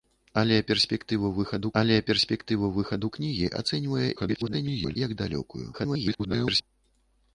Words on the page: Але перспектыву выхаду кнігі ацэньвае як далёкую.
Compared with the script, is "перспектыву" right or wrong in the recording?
right